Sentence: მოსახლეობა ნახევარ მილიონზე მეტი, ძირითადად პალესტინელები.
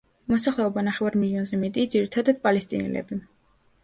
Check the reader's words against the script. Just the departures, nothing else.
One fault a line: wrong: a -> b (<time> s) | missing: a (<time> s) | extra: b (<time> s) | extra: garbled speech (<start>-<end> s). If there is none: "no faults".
no faults